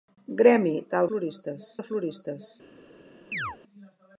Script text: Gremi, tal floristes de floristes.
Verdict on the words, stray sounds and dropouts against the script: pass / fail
fail